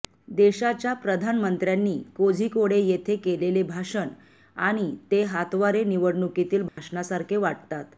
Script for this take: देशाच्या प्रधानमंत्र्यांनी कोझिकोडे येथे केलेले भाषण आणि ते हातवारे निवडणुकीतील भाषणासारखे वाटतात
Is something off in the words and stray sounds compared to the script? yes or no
yes